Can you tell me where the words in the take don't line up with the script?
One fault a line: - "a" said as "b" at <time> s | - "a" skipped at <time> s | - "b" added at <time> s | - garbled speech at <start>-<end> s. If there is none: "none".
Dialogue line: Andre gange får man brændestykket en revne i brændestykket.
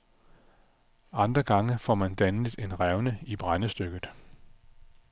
- "brændestykket" said as "dannet" at 2.1 s